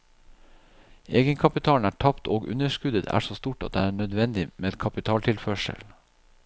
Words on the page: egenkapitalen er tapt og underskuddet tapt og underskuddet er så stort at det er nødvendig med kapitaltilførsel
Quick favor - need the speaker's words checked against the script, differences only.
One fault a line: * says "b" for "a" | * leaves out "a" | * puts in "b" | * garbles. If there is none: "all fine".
* leaves out "tapt og underskuddet"